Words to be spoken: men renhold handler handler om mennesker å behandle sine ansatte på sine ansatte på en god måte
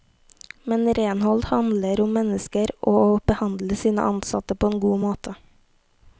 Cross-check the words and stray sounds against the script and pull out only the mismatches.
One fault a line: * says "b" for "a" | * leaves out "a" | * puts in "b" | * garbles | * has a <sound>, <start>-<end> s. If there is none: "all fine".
* leaves out "handler"
* puts in "og"
* leaves out "sine ansatte på"